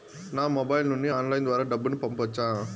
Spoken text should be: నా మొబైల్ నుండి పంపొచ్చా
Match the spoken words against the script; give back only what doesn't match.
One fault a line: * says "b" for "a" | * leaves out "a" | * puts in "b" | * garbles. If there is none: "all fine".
* puts in "ఆన్లైన్ ద్వారా డబ్బును"